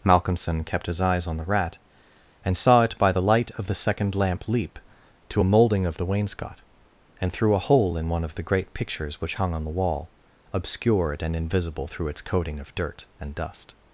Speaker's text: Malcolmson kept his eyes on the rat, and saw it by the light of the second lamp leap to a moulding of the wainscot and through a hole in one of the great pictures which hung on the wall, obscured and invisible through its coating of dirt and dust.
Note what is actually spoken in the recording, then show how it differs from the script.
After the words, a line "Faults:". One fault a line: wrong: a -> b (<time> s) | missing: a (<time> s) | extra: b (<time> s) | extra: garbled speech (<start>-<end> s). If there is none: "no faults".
Malcolmson kept his eyes on the rat, and saw it by the light of the second lamp leap to a moulding of the wainscot and through a hole in one of the great pictures which hung on the wall, obscured and invisible through its coating of dirt and dust.
Faults:
no faults